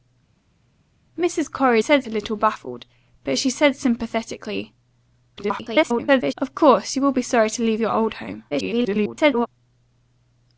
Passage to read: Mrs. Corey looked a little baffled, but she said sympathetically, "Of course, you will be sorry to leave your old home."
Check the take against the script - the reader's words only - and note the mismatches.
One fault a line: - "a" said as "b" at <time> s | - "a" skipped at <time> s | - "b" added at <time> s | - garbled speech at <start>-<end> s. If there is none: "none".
- "looked" said as "said" at 1.8 s
- garbled speech at 5.4-6.3 s
- garbled speech at 8.5-9.5 s